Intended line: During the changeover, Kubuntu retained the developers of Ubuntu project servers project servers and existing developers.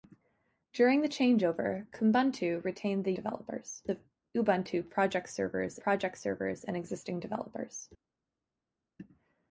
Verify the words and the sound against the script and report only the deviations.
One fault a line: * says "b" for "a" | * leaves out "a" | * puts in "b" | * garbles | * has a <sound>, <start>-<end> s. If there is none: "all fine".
all fine